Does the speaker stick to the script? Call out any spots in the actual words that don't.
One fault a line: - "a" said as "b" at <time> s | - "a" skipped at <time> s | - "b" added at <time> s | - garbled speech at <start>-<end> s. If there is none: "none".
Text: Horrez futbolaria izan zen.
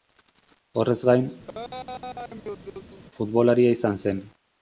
- "gain" added at 1.1 s